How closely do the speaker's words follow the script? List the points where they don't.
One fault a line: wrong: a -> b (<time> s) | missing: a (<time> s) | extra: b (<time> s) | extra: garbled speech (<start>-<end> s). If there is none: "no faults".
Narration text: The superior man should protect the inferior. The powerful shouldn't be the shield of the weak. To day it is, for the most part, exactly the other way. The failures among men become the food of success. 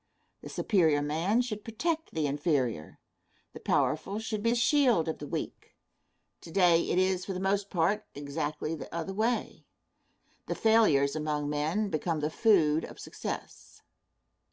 wrong: shouldn't -> should (4.2 s)